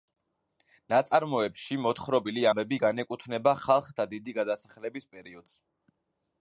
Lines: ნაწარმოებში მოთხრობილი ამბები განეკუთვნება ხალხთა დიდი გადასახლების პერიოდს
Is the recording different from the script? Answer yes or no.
no